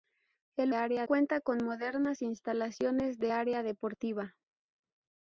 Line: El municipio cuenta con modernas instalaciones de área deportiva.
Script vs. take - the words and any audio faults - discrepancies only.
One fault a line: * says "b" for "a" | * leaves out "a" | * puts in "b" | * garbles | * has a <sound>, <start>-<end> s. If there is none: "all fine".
* says "área" for "municipio"